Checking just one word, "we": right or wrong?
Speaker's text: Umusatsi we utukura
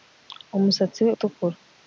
right